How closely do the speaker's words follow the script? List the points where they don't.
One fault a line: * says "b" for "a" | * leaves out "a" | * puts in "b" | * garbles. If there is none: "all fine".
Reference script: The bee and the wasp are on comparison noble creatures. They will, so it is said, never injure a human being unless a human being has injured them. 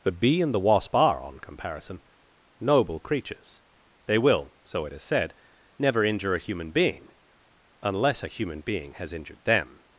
all fine